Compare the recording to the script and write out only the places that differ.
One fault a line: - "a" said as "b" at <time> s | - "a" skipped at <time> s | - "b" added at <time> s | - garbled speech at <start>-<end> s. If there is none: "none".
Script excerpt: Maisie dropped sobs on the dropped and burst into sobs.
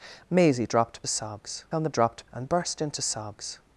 none